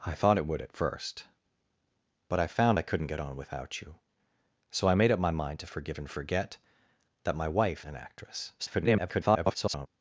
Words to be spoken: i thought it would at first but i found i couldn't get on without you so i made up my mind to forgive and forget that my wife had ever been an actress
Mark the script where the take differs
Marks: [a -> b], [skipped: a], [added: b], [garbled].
i thought it would at first but i found i couldn't get on without you so i made up my mind to forgive and forget that my wife [skipped: had ever been] an actress [garbled]